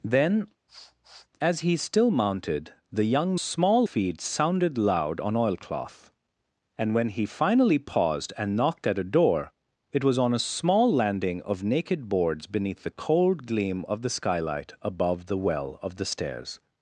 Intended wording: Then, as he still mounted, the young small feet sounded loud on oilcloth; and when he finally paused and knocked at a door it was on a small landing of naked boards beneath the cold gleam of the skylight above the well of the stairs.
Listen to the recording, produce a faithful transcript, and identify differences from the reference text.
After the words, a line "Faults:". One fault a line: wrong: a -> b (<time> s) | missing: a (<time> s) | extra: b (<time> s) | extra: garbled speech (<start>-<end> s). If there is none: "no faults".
Then, as he still mounted, the young small feet sounded loud on oilcloth; and when he finally paused and knocked at a door it was on a small landing of naked boards beneath the cold gleam of the skylight above the well of the stairs.
Faults:
no faults